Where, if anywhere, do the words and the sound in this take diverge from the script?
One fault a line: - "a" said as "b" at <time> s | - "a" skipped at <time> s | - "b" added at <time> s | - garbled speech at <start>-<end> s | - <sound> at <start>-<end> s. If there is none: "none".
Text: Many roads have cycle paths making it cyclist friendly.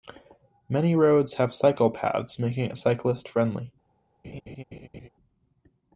- laugh at 4.2-5.1 s